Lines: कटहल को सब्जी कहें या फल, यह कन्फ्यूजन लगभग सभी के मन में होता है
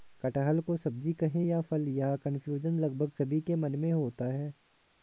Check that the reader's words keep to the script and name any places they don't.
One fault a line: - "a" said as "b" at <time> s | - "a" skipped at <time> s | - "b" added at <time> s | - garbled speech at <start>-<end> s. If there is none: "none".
none